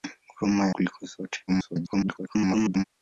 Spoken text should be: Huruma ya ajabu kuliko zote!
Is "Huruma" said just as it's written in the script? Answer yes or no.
yes